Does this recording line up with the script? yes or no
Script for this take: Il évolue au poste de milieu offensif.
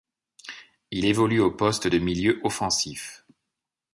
yes